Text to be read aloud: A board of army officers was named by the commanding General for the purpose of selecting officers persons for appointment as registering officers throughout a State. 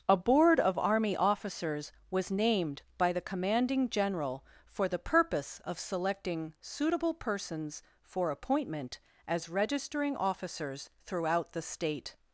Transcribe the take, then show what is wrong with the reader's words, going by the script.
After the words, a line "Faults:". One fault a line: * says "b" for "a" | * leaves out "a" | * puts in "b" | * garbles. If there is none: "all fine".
A board of army officers was named by the commanding General for the purpose of selecting suitable persons for appointment as registering officers throughout the State.
Faults:
* says "suitable" for "officers"
* says "the" for "a"